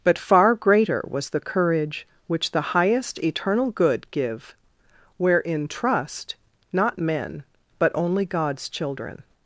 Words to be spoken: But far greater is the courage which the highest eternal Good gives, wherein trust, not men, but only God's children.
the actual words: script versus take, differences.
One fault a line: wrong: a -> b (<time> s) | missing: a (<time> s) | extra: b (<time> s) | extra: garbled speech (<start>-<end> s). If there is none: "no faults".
wrong: is -> was (1.1 s)
wrong: gives -> give (4.1 s)